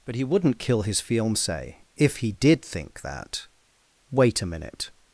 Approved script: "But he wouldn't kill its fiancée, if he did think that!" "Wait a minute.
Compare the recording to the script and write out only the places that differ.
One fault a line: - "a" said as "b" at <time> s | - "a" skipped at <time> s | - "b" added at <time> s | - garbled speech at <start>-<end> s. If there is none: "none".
- "its" said as "his" at 0.8 s